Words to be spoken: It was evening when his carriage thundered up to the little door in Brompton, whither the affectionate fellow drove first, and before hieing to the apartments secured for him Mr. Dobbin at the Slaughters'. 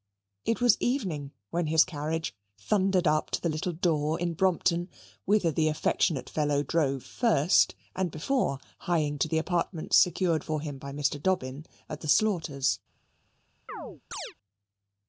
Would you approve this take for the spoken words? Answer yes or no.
no